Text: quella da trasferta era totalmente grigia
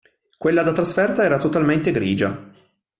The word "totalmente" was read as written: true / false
true